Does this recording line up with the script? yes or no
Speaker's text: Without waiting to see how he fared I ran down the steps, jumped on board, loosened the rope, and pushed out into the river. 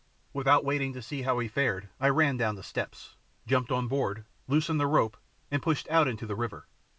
yes